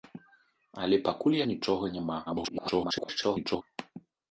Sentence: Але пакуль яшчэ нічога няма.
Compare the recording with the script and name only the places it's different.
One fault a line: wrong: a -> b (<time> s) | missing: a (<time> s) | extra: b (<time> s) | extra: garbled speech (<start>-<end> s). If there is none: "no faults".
missing: яшчэ (1.4 s)
extra: garbled speech (2.3-3.6 s)